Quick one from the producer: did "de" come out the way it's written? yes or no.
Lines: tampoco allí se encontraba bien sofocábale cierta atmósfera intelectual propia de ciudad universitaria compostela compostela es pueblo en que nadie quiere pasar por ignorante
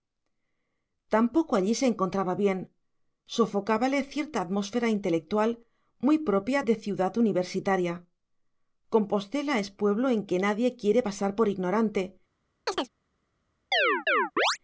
yes